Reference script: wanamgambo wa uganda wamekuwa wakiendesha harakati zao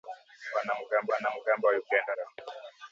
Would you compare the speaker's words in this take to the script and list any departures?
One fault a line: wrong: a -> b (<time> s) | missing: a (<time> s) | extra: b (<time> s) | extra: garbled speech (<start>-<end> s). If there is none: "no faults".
extra: wanamgambo (1.1 s)
missing: wamekuwa wakiendesha harakati (2.1 s)